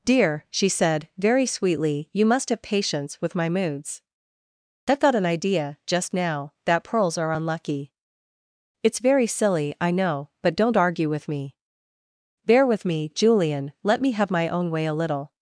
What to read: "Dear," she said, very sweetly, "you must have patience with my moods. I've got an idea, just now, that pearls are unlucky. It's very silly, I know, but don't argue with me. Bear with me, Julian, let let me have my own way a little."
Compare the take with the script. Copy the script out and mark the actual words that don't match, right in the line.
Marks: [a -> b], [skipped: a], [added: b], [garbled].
"Dear," she said, very sweetly, "you must have patience with my moods. I've got an idea, just now, that pearls are unlucky. It's very silly, I know, but don't argue with me. Bear with me, Julian, let [skipped: let] me have my own way a little."